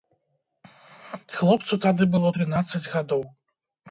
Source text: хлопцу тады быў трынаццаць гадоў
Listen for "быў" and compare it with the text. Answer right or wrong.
wrong